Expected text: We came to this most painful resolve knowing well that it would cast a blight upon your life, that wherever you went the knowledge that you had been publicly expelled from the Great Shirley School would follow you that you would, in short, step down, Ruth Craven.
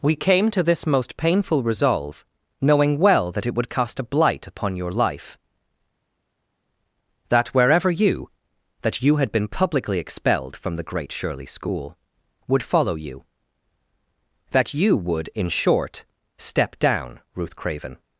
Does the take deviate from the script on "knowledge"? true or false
true